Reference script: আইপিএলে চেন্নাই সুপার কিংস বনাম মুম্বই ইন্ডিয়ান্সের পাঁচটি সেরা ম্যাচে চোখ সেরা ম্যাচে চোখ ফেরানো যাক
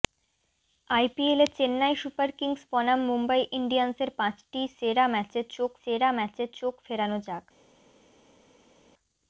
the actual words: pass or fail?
pass